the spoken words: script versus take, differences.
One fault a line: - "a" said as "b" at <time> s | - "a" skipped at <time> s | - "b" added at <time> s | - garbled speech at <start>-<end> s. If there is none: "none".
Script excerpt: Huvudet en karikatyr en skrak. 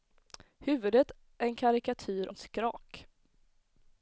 none